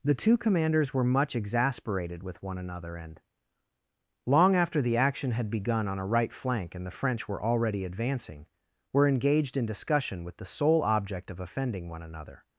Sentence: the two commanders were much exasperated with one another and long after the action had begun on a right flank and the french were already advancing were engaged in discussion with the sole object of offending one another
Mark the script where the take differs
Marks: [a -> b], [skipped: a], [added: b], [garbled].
the two commanders were much exasperated with one another and long after the action had begun on a right flank and the french were already advancing were engaged in discussion with the sole object of offending one another